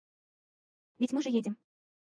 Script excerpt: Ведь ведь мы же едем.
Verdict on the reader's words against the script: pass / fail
fail